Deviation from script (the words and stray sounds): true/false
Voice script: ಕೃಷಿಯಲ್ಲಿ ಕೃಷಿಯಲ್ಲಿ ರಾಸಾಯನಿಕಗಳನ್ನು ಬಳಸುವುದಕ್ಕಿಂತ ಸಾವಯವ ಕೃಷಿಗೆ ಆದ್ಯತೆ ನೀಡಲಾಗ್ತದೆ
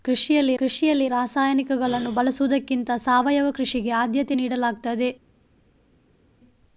false